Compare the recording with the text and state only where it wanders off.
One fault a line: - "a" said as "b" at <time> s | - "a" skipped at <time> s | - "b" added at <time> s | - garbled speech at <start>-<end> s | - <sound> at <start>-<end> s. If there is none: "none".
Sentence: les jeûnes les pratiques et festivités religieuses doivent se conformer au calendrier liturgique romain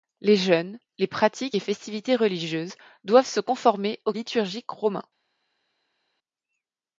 - "calendrier" skipped at 4.1 s